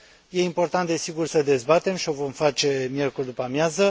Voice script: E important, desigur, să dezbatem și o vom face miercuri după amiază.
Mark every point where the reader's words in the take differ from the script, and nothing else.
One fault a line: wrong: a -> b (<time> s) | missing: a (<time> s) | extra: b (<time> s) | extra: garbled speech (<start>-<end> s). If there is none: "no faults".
no faults